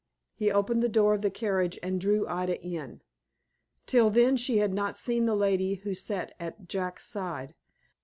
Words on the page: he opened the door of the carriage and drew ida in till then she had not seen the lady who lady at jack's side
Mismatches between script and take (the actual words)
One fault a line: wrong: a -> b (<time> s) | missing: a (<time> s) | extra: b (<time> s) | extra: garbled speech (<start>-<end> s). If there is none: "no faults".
wrong: lady -> sat (5.9 s)